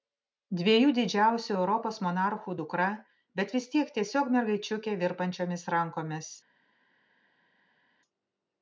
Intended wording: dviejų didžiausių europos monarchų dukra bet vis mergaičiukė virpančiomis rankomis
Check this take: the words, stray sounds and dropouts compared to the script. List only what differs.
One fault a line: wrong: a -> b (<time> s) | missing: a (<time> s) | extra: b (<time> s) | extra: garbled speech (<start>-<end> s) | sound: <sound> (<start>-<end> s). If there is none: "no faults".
extra: tiek tiesiog (3.7 s)